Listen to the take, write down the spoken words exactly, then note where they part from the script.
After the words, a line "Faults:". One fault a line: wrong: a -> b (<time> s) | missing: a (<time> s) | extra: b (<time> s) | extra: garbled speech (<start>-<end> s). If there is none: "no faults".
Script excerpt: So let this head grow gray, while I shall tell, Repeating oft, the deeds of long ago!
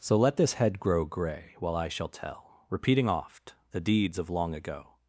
So let this head grow gray, while I shall tell, Repeating oft, the deeds of long ago!
Faults:
no faults